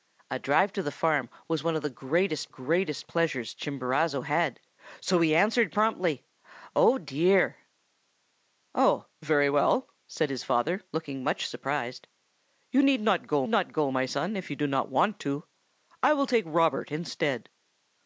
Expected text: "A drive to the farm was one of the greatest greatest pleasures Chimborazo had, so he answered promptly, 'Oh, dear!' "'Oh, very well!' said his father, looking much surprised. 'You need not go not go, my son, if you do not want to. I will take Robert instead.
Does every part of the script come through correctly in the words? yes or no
yes